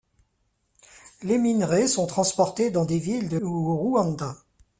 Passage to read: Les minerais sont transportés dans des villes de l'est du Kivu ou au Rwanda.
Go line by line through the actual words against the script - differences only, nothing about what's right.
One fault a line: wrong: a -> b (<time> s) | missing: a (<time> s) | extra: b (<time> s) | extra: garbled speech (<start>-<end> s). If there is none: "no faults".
missing: l'est du Kivu (3.4 s)